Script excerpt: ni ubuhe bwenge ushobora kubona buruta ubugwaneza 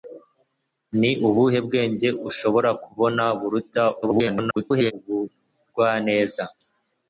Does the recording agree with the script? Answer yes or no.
no